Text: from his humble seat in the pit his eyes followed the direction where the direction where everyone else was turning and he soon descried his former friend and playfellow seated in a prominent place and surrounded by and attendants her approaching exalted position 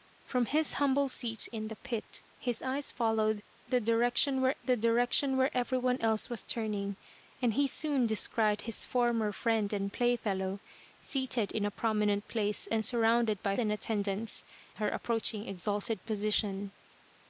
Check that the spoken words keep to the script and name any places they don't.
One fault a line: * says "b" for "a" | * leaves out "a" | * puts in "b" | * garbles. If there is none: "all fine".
all fine